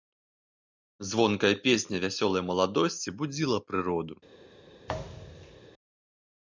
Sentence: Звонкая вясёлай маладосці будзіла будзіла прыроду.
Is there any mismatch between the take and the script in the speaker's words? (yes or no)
yes